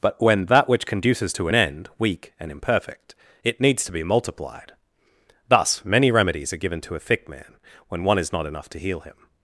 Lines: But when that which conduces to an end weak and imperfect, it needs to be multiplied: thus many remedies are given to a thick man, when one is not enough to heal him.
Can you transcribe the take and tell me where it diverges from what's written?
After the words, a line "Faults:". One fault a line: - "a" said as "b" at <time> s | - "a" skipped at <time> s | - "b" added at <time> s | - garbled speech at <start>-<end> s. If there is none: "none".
But when that which conduces to an end weak and imperfect, it needs to be multiplied: thus many remedies are given to a thick man, when one is not enough to heal him.
Faults:
none